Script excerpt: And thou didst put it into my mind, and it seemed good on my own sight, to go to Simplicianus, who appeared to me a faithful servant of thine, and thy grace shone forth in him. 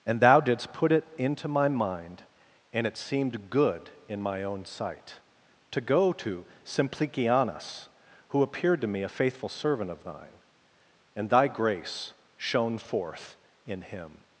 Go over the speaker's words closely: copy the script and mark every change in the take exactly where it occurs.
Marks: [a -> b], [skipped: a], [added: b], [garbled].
And thou didst put it into my mind, and it seemed good [on -> in] my own sight, to go to Simplicianus, who appeared to me a faithful servant of thine, and thy grace shone forth in him.